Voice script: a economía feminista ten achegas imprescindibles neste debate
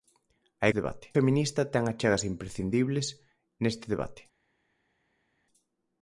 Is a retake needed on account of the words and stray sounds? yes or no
yes